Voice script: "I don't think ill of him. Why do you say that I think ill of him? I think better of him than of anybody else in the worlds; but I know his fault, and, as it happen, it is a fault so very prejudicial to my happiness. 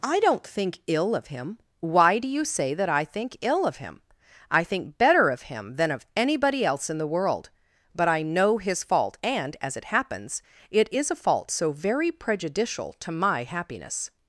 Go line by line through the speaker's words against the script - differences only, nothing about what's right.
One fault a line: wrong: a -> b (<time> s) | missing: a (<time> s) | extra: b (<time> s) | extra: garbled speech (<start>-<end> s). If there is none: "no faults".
wrong: worlds -> world (7.1 s)
wrong: happen -> happens (9.9 s)